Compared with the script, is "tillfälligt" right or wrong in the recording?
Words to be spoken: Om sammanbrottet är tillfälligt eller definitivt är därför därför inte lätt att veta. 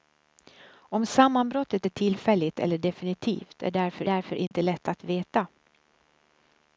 right